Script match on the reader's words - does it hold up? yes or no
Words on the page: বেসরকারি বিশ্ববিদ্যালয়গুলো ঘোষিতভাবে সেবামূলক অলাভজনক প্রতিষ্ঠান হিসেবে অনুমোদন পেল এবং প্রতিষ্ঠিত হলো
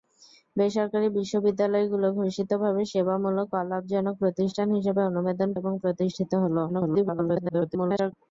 no